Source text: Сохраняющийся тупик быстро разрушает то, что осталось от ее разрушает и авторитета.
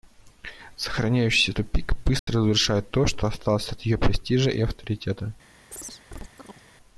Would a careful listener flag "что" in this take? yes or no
no